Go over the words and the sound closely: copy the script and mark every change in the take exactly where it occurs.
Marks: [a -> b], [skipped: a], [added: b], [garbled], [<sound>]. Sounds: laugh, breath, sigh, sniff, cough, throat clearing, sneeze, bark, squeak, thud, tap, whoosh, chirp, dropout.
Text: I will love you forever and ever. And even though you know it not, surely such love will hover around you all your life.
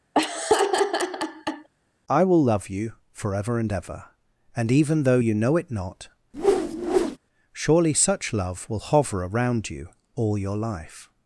[laugh] I will love you forever and ever. And even though you know it not, [whoosh] surely such love will hover around you all your life.